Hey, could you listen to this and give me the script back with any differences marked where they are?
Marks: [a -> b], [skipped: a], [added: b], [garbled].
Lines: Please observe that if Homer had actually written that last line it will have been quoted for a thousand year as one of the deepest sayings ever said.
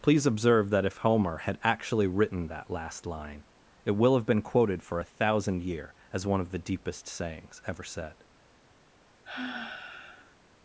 Please observe that if Homer had actually written that last line it will have been quoted for a thousand year as one of the deepest sayings ever said.